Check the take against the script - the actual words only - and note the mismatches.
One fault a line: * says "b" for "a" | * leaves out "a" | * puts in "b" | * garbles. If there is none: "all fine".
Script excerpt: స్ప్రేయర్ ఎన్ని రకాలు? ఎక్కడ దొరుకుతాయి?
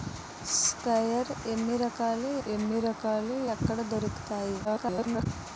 * puts in "ఎన్ని రకాలు"
* garbles